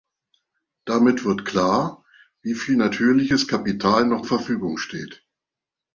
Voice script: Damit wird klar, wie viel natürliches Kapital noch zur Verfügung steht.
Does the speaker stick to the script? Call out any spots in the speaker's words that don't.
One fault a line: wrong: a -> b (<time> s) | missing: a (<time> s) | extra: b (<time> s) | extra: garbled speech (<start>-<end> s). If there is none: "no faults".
missing: zur (4.2 s)